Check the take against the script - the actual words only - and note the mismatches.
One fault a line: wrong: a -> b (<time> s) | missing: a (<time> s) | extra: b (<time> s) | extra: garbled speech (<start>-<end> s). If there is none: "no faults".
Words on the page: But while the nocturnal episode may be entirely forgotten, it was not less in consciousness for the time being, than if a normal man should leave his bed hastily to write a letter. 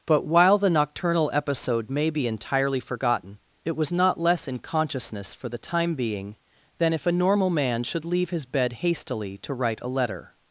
no faults